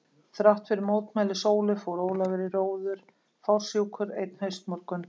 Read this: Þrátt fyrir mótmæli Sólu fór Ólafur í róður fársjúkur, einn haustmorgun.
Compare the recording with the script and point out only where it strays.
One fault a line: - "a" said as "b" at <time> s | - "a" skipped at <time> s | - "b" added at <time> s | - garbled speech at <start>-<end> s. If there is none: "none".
none